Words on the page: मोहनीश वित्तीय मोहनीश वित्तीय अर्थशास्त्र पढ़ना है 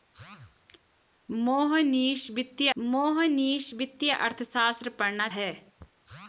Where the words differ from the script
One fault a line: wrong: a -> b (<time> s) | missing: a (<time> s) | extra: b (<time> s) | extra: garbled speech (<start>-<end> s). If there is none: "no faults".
no faults